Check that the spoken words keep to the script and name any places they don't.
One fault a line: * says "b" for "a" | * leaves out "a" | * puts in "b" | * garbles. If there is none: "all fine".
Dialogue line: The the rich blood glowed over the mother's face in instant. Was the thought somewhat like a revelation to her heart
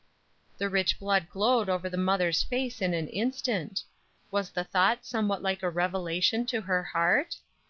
* leaves out "the"
* puts in "an"